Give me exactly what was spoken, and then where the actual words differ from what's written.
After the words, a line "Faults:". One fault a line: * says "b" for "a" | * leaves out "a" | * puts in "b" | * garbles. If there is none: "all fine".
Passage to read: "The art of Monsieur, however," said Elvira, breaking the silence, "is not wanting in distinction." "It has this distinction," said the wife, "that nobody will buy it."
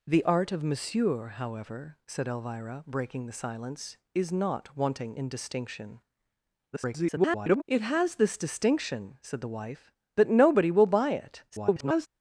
"The art of Monsieur, however," said Elvira, breaking the silence, "is not wanting in distinction." [garbled] "It has this distinction," said the wife, "that nobody will buy it." [garbled]
Faults:
* garbles
* garbles